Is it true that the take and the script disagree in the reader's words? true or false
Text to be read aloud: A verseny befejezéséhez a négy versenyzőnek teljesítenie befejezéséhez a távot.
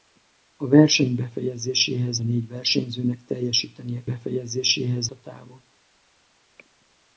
false